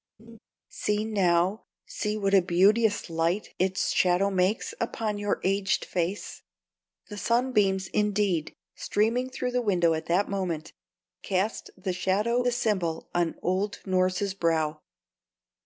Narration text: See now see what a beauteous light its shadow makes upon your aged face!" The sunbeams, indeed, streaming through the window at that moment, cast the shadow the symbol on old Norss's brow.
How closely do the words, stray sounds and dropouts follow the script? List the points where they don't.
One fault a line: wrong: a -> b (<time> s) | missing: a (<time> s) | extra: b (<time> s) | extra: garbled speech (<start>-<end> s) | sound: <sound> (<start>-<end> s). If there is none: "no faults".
sound: laugh (0.2-0.4 s)